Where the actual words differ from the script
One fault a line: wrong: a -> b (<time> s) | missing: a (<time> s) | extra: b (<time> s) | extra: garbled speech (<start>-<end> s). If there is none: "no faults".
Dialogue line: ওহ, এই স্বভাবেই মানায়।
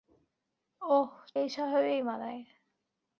no faults